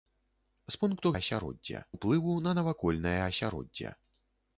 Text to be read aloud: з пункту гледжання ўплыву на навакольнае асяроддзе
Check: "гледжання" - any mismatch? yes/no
yes